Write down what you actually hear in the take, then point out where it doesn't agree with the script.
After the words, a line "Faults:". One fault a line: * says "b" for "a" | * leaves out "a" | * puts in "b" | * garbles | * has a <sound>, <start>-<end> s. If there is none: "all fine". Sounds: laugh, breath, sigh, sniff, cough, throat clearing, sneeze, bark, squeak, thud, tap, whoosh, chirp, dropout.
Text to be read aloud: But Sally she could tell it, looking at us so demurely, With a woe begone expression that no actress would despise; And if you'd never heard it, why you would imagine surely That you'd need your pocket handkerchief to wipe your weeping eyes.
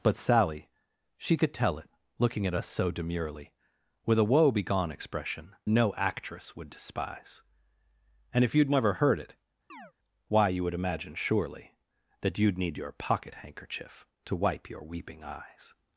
But Sally she could tell it, looking at us so demurely, With a woe begone expression no actress would despise; And if you'd never heard it, why you would imagine surely That you'd need your pocket handkerchief to wipe your weeping eyes.
Faults:
* leaves out "that"
* has a chirp, 9.7-9.9 s